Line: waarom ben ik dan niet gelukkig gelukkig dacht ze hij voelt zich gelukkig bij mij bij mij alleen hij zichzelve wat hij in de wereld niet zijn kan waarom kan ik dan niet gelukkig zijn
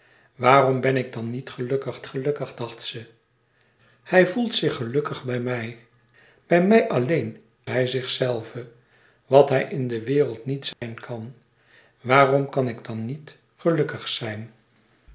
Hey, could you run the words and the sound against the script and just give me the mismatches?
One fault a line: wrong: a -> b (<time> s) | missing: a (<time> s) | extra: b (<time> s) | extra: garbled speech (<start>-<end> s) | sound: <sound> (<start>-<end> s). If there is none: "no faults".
sound: dropout (10.7-10.8 s)